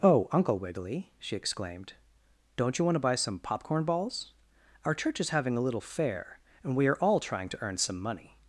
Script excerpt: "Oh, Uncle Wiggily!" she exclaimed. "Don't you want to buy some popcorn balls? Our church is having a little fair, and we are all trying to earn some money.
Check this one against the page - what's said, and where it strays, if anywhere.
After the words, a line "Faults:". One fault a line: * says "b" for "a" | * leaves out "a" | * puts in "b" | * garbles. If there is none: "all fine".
"Oh, Uncle Wiggily!" she exclaimed. "Don't you want to buy some popcorn balls? Our church is having a little fair, and we are all trying to earn some money.
Faults:
all fine